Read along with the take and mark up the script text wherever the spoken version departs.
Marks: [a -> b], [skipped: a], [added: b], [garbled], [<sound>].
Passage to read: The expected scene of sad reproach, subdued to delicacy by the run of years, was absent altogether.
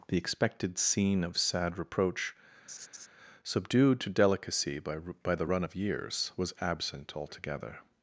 The expected scene of sad reproach, [laugh] subdued to delicacy by [added: by] the run of years, was absent altogether.